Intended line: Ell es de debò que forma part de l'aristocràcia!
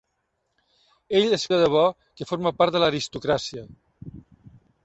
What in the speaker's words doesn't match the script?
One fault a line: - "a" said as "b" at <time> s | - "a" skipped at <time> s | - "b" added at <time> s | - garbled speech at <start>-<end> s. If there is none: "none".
none